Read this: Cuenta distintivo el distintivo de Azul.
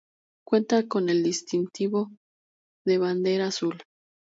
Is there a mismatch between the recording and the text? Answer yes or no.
yes